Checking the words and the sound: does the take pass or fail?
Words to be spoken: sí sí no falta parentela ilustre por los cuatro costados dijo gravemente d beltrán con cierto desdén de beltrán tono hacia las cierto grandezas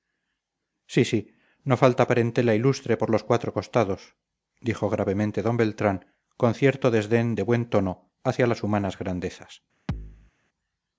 fail